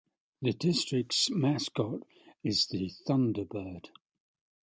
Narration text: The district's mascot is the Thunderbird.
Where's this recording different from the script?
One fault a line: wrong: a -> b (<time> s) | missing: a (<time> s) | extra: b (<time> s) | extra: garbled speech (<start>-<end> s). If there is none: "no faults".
no faults